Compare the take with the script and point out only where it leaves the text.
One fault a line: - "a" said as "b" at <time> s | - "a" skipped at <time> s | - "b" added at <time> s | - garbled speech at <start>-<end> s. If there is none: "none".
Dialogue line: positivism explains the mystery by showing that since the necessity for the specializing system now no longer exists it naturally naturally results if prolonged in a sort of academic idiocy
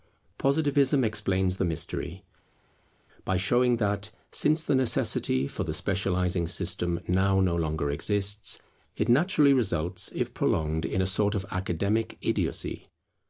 - "naturally" skipped at 9.5 s